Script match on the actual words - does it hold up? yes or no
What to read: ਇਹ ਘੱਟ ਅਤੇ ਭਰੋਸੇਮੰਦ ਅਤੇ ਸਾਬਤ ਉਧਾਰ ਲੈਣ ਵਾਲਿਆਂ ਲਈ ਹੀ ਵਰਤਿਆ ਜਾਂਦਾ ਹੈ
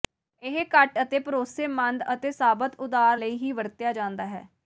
no